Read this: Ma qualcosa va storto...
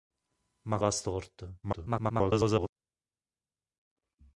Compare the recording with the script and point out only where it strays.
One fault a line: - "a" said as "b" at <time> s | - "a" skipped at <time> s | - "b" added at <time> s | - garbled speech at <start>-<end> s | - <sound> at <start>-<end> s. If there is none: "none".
- "qualcosa" skipped at 0.8 s
- garbled speech at 1.6-2.7 s